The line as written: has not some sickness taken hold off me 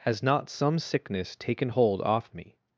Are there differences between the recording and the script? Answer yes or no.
no